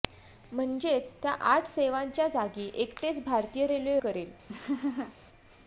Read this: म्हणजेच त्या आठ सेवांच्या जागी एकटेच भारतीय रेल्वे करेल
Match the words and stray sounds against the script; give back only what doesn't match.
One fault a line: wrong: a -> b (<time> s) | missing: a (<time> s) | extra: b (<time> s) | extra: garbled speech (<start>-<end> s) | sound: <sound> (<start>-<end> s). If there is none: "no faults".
sound: laugh (4.5-5.2 s)